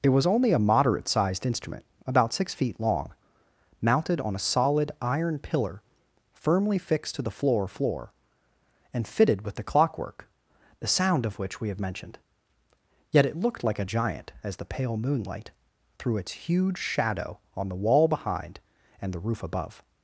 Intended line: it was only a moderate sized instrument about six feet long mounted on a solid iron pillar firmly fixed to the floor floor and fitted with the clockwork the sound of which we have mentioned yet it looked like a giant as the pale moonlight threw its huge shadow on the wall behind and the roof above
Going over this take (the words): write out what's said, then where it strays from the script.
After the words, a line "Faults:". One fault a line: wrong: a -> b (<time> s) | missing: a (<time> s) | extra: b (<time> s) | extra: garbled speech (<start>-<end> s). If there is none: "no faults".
it was only a moderate sized instrument about six feet long mounted on a solid iron pillar firmly fixed to the floor floor and fitted with the clockwork the sound of which we have mentioned yet it looked like a giant as the pale moonlight threw its huge shadow on the wall behind and the roof above
Faults:
no faults